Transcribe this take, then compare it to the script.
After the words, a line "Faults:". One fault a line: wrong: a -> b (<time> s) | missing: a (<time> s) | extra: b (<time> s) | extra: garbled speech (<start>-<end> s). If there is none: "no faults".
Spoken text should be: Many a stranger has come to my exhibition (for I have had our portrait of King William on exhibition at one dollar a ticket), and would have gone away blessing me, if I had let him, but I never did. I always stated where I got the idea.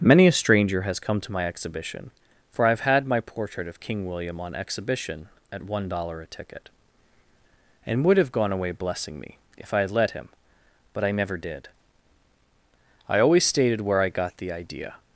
Many a stranger has come to my exhibition (for I have had my portrait of King William on exhibition at one dollar a ticket), and would have gone away blessing me, if I had let him, but I never did. I always stated where I got the idea.
Faults:
wrong: our -> my (3.0 s)